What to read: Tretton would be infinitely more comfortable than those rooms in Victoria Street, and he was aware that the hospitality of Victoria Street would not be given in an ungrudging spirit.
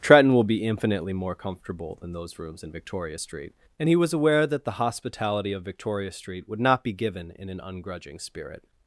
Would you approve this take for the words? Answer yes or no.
no